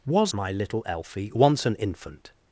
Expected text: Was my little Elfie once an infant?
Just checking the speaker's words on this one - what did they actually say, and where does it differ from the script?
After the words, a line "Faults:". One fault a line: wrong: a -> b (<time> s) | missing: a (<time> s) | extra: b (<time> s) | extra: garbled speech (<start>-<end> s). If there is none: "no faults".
Was my little Elfie once an infant?
Faults:
no faults